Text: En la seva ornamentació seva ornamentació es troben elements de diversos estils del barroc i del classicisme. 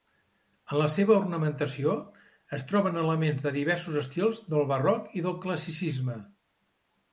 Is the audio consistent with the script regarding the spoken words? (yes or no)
no